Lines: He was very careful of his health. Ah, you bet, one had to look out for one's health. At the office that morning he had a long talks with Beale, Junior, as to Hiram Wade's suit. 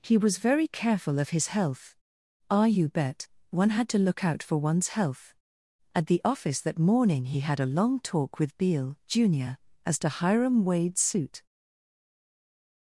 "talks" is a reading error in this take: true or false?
true